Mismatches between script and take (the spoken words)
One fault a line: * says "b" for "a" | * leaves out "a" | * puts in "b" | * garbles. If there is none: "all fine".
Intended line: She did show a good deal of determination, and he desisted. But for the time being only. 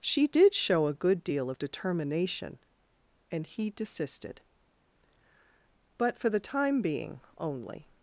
all fine